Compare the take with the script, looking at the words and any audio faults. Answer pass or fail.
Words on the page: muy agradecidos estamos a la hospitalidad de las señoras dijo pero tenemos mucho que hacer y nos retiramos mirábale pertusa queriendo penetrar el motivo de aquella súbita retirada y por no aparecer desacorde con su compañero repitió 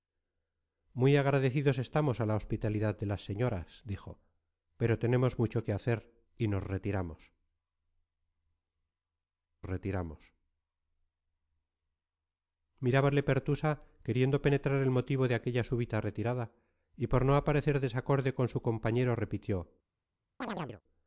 fail